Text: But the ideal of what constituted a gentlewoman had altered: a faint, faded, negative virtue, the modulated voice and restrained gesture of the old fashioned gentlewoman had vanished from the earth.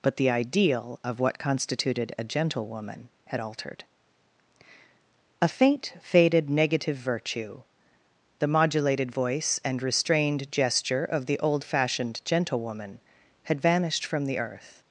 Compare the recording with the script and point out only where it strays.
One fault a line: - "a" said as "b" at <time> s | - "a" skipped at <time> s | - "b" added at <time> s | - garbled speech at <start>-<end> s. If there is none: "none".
none